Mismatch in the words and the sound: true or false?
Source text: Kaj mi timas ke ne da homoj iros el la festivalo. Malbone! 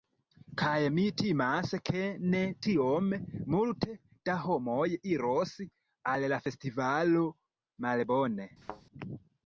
true